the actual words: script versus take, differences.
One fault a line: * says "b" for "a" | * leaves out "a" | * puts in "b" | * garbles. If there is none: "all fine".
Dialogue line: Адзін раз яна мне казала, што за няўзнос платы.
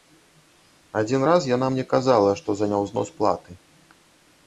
all fine